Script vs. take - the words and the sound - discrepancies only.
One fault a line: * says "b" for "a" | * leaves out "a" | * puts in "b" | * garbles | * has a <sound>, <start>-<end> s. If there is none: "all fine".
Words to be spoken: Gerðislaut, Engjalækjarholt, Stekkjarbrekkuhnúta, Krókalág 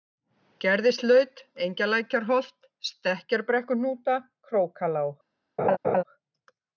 * has a laugh, 5.6-6.0 s